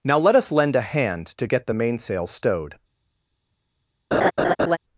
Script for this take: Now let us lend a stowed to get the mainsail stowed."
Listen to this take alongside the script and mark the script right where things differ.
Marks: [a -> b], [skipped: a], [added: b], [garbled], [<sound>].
Now let us lend a [stowed -> hand] to get the mainsail stowed." [laugh]